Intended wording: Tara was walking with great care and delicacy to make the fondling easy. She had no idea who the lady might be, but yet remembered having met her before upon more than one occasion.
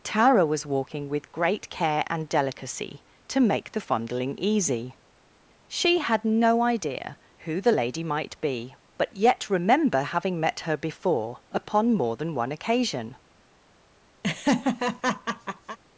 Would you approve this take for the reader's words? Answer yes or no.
no